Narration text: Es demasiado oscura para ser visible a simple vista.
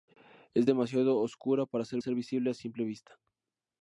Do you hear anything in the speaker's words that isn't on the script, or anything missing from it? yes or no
yes